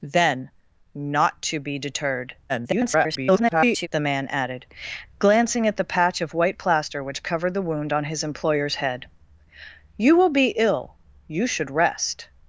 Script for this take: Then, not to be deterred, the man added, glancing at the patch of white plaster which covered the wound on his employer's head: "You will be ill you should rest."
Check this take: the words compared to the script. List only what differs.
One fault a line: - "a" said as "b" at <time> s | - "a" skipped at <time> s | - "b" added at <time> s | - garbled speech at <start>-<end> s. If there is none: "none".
- garbled speech at 2.5-3.9 s